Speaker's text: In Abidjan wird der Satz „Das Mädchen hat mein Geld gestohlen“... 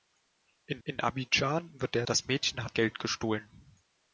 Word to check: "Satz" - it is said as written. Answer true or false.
false